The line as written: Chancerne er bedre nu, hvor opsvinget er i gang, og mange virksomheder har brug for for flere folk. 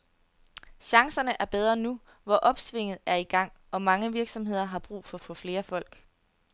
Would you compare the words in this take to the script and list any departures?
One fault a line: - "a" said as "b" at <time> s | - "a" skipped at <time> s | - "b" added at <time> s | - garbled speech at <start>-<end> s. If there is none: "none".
none